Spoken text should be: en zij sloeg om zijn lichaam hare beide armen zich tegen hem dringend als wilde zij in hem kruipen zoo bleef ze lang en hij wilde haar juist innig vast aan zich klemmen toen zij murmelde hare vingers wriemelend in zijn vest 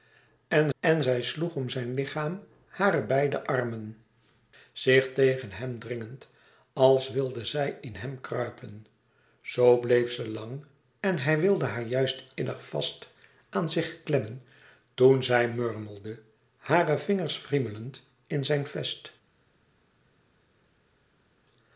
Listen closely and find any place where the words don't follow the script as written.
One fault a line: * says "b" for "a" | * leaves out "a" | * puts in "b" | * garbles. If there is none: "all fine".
* puts in "en"